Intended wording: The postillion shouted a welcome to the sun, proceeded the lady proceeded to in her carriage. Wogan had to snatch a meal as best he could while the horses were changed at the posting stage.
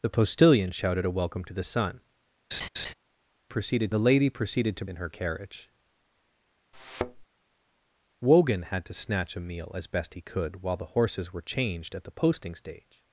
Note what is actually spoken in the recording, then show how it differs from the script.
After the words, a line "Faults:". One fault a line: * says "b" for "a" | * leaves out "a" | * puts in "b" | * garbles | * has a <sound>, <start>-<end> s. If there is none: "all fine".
The postillion shouted a welcome to the sun, proceeded the lady proceeded to in her carriage. Wogan had to snatch a meal as best he could while the horses were changed at the posting stage.
Faults:
* has a laugh, 2.5-2.9 s
* has a thud, 6.7-7.3 s